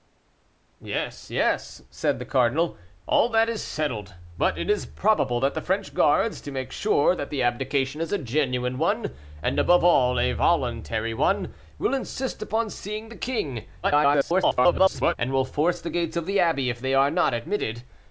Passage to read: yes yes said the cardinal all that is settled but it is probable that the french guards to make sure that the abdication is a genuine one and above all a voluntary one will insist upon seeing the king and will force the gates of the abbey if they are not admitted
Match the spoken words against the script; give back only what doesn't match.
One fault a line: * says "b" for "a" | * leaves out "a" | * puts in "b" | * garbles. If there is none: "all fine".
* garbles